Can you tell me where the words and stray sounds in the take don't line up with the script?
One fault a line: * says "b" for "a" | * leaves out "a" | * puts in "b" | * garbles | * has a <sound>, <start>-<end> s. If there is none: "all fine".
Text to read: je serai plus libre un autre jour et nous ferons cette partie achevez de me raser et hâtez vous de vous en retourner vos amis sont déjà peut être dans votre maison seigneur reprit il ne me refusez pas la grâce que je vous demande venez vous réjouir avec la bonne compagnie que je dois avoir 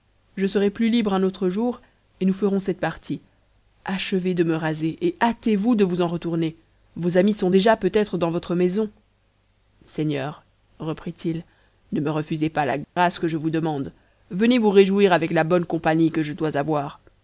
* has a dropout, 12.8-13.0 s